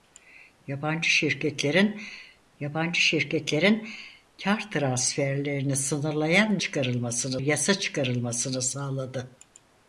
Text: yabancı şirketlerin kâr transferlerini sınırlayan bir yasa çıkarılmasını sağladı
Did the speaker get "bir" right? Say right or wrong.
wrong